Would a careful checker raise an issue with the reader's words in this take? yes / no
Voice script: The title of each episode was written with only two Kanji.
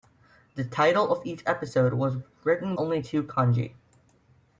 yes